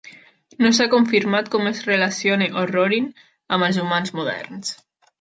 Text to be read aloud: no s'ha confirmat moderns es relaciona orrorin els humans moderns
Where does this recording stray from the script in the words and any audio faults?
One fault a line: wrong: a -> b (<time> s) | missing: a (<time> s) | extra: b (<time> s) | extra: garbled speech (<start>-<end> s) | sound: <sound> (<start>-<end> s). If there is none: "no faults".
wrong: moderns -> com (1.6 s)
extra: amb (3.6 s)